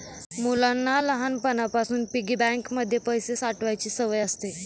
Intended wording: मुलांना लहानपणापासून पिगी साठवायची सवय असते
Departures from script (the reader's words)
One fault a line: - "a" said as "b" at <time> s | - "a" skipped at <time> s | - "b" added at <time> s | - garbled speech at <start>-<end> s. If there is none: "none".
- "बँक मध्ये पैसे" added at 2.3 s